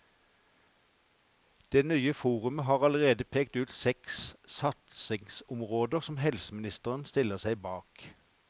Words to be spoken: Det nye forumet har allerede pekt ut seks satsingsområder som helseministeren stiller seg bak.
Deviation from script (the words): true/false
false